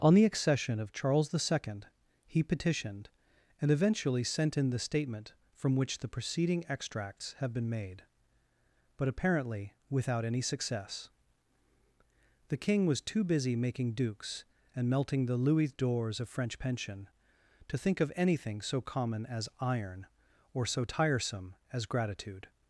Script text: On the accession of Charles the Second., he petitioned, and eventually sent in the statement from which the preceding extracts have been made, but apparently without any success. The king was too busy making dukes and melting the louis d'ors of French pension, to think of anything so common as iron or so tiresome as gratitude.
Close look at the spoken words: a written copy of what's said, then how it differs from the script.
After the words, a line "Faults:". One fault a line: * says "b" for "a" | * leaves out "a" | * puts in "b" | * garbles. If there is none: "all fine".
On the accession of Charles the Second., he petitioned, and eventually sent in the statement from which the preceding extracts have been made, but apparently without any success. The king was too busy making dukes and melting the louis d'ors of French pension, to think of anything so common as iron or so tiresome as gratitude.
Faults:
all fine